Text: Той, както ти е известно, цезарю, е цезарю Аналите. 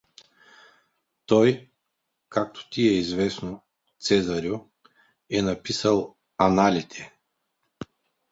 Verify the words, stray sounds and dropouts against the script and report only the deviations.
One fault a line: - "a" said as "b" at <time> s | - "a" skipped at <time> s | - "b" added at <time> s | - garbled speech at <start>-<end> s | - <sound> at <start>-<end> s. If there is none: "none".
- "цезарю" said as "написал" at 5.4 s